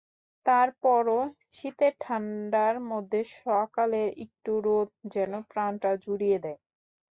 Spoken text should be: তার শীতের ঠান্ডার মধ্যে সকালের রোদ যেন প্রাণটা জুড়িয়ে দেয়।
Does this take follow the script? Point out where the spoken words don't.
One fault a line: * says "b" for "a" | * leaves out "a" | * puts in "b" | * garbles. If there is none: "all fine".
* puts in "পরও"
* puts in "একটু"